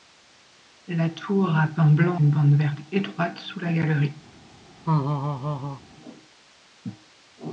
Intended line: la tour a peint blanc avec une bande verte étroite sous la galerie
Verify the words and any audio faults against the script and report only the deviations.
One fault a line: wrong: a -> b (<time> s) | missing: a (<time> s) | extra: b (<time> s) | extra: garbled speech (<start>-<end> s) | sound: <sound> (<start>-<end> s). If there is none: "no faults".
missing: avec (2.2 s)
sound: laugh (4.8-5.8 s)